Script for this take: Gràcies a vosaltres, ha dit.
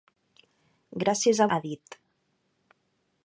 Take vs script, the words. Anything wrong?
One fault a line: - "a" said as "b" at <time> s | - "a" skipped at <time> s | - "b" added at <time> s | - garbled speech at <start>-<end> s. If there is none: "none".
- "vosaltres" skipped at 1.5 s